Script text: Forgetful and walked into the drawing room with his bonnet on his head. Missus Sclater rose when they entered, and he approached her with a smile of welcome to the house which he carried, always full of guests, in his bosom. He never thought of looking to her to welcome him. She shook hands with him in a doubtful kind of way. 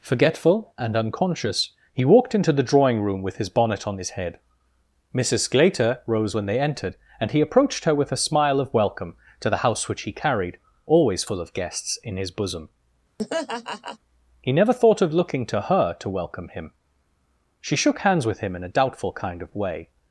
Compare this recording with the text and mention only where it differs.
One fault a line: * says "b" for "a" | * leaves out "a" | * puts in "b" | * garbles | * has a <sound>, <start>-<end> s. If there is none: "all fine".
* puts in "unconscious he"
* has a laugh, 13.2-14.0 s